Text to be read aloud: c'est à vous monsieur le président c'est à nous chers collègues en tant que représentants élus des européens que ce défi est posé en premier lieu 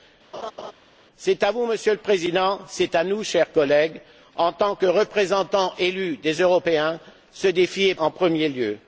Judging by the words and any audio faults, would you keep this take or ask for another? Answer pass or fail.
fail